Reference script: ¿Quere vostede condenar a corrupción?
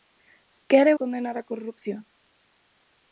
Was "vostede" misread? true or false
true